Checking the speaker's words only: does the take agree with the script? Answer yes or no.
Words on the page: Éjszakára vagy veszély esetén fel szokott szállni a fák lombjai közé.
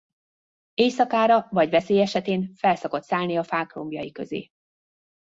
yes